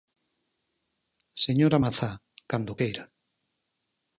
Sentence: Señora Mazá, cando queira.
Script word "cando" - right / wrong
right